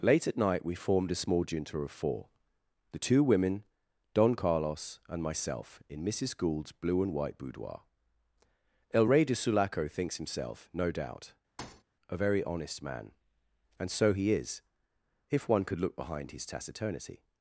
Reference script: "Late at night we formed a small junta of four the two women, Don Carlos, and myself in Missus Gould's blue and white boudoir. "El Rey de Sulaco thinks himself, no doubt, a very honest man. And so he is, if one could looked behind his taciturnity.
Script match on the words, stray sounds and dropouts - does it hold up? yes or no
no